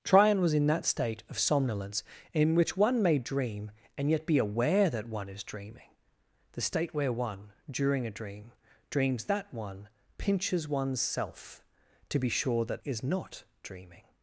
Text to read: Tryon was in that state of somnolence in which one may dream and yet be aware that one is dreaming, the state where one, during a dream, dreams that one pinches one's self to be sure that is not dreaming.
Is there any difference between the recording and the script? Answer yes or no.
no